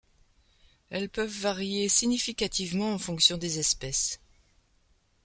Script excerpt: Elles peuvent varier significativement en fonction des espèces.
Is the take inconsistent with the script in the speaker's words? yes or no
no